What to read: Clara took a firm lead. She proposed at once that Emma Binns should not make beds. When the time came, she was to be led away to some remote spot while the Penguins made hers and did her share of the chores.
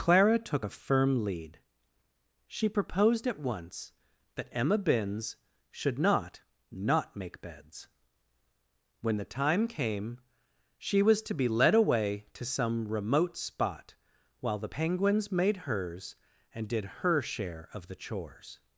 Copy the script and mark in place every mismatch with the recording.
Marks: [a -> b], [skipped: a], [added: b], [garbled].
Clara took a firm lead. She proposed at once that Emma Binns should not [added: not] make beds. When the time came, she was to be led away to some remote spot while the Penguins made hers and did her share of the chores.